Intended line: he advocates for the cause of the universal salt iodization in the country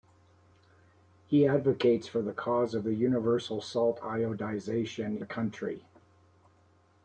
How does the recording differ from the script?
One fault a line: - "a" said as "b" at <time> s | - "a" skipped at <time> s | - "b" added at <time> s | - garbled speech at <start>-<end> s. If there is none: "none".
- "in" skipped at 5.2 s